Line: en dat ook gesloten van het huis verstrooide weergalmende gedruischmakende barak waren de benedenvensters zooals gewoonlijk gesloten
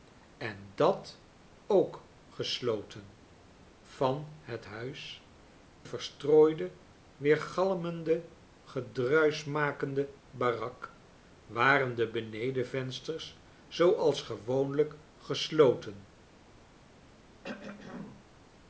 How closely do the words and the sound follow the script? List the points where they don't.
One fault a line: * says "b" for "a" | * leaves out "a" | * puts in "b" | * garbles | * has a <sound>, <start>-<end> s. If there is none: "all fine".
* has a throat clearing, 17.4-18.3 s